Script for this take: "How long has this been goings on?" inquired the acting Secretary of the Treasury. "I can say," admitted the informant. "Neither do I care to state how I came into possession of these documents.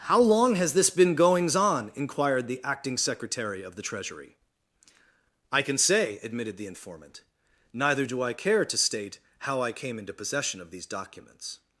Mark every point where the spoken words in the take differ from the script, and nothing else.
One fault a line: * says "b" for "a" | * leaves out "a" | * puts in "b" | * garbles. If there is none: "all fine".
all fine